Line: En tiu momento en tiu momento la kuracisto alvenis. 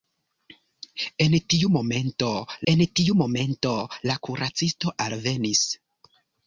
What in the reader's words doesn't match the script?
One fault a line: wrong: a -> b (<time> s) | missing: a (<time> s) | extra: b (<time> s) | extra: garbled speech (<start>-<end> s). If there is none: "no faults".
no faults